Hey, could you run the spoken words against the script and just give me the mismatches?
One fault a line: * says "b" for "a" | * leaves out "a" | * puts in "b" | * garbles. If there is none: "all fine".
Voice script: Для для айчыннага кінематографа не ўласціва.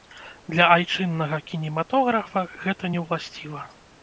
* leaves out "для"
* puts in "гэта"